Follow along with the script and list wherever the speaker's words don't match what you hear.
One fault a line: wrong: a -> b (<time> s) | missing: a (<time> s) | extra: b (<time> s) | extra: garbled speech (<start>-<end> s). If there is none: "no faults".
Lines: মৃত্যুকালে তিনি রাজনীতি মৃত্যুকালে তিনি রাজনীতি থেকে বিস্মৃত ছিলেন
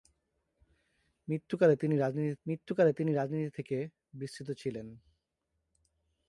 no faults